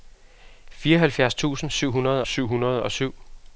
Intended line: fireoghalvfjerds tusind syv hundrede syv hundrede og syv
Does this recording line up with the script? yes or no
yes